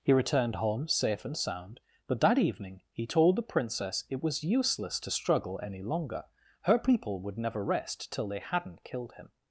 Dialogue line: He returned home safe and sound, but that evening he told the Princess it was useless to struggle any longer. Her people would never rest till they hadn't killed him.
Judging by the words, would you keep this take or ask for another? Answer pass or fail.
pass